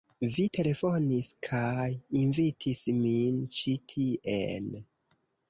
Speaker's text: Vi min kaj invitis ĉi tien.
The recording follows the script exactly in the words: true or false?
false